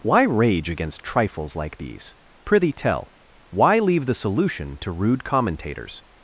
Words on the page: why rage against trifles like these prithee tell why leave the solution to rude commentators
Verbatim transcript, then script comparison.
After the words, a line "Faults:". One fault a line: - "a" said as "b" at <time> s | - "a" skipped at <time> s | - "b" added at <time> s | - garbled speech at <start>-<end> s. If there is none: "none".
why rage against trifles like these prithee tell why leave the solution to rude commentators
Faults:
none